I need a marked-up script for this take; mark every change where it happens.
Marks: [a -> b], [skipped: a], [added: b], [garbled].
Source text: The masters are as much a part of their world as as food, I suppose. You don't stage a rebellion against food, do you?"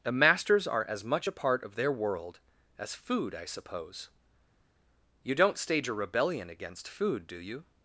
The masters are as much a part of their world as [skipped: as] food, I suppose. You don't stage a rebellion against food, do you?"